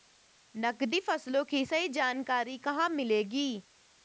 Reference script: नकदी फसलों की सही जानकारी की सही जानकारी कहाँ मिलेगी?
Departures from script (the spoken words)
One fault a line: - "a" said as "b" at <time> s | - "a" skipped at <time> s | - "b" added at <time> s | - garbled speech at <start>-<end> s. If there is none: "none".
- "की सही जानकारी" skipped at 2.6 s